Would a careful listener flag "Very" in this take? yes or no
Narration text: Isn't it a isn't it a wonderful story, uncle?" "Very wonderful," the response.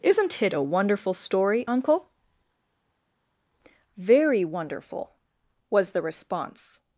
no